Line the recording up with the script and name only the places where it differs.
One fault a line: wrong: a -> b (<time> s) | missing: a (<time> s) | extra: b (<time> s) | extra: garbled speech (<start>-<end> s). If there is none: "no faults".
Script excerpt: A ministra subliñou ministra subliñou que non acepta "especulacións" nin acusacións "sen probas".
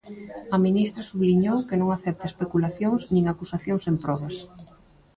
missing: ministra subliñou (1.6 s)